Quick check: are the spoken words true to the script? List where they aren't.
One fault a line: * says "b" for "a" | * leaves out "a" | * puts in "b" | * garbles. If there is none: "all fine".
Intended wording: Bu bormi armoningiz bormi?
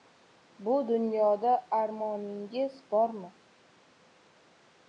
* says "dunyoda" for "bormi"